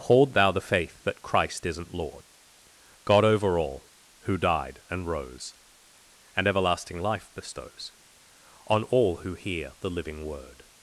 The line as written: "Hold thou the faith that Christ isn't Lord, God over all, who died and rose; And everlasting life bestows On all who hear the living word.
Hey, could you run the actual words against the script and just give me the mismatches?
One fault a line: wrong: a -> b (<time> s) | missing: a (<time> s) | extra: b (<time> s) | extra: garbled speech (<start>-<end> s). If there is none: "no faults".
no faults